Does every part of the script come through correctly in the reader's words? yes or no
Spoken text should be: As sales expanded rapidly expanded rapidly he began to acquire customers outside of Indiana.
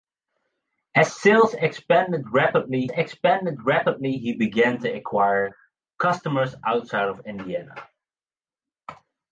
yes